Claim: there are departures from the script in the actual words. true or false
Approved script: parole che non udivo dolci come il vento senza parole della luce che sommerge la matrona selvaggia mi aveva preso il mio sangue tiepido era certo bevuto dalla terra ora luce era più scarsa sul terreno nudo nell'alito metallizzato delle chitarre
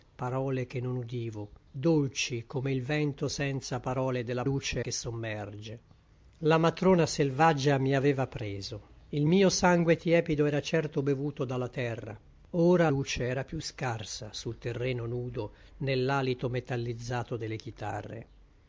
false